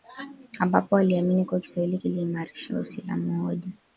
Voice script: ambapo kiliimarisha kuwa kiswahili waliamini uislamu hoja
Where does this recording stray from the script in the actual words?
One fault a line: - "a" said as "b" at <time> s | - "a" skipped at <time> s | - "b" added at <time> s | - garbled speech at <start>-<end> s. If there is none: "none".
- "kiliimarisha" said as "waliamini" at 0.9 s
- "waliamini" said as "kiliimarisha" at 2.0 s